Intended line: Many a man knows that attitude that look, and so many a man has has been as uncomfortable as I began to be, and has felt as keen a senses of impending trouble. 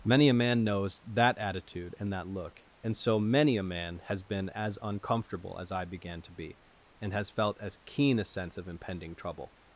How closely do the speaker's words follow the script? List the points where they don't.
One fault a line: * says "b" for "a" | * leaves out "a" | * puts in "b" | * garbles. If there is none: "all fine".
* puts in "and"
* leaves out "has"
* says "sense" for "senses"